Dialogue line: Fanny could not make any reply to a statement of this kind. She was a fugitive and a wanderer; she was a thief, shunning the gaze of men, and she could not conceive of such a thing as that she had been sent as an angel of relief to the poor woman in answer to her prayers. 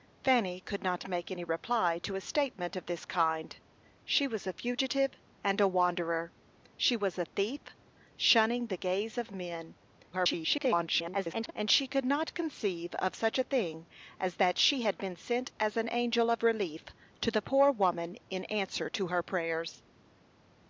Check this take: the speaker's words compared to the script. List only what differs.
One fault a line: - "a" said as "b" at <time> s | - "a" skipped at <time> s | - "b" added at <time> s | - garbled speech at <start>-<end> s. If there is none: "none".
- garbled speech at 10.1-11.5 s